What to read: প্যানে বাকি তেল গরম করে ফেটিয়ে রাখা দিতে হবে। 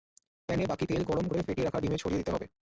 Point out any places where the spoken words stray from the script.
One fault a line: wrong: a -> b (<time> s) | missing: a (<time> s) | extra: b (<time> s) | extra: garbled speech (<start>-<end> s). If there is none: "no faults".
extra: ডিমে ছড়িয়ে (1.8 s)